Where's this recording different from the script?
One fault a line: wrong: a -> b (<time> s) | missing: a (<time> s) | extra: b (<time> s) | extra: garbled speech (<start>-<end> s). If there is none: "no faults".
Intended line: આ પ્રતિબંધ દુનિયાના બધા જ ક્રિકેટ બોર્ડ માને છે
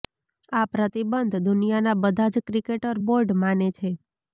no faults